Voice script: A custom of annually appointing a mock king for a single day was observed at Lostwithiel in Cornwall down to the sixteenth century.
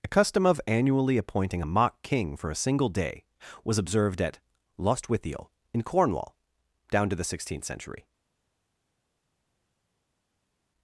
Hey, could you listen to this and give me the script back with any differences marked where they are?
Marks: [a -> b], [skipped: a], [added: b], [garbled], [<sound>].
A custom of annually appointing a mock king for a single day was observed at Lostwithiel in Cornwall down to the sixteenth century.